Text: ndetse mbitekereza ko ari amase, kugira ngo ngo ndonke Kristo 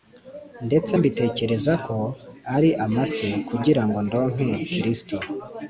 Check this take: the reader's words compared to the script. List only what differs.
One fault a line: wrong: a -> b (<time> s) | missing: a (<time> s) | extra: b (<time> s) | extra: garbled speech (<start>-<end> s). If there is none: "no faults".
missing: ngo (4.0 s)